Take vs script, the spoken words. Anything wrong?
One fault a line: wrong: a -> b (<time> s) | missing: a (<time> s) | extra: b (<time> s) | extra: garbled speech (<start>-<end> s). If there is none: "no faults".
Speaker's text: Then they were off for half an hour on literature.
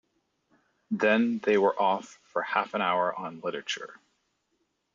no faults